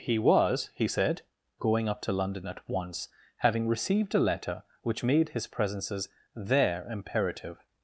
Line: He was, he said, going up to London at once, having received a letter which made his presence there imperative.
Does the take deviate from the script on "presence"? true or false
true